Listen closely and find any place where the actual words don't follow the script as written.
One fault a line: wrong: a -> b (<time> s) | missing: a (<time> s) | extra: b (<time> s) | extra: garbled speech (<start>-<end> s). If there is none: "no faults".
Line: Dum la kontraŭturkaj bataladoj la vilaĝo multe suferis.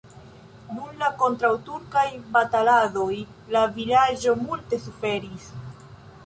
no faults